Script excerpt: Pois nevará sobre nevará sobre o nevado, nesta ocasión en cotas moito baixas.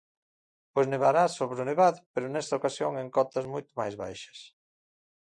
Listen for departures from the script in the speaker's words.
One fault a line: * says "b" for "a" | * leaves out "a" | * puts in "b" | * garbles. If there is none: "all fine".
* leaves out "nevará sobre"
* puts in "pero"
* puts in "máis"